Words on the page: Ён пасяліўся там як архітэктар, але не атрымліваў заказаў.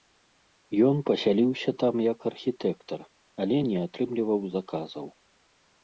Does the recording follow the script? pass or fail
pass